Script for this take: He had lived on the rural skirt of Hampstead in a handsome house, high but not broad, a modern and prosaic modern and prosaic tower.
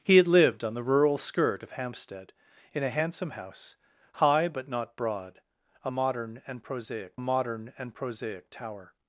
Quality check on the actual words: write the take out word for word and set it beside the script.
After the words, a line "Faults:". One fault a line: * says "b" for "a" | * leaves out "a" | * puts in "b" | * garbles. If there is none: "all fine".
He had lived on the rural skirt of Hampstead in a handsome house, high but not broad, a modern and prosaic modern and prosaic tower.
Faults:
all fine